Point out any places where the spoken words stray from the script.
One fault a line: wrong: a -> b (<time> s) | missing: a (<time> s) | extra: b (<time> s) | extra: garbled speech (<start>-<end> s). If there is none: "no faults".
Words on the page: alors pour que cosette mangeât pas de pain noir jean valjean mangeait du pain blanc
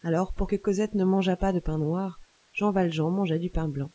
extra: ne (0.9 s)